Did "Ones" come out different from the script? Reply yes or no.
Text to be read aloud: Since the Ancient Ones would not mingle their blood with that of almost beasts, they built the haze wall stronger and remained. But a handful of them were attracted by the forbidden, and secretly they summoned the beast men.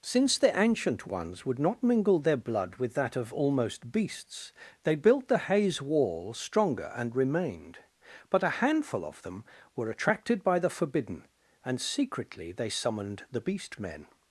no